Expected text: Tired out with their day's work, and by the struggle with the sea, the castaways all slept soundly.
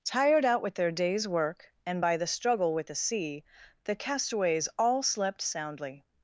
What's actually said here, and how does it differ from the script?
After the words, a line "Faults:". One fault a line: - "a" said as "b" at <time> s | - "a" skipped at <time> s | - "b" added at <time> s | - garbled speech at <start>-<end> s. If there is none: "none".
Tired out with their day's work, and by the struggle with the sea, the castaways all slept soundly.
Faults:
none